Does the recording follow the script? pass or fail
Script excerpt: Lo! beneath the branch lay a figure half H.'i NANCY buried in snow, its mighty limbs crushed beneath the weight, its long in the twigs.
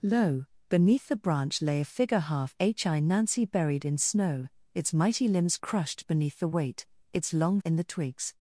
pass